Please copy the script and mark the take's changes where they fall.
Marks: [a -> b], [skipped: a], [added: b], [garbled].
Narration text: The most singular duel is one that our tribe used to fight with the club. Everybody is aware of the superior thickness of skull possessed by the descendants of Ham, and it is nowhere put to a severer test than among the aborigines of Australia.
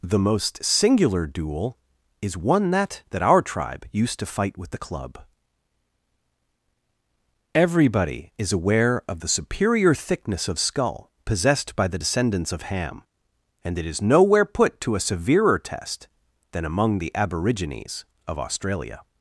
The most singular duel is one that [added: that] our tribe used to fight with the club. Everybody is aware of the superior thickness of skull possessed by the descendants of Ham, and it is nowhere put to a severer test than among the aborigines of Australia.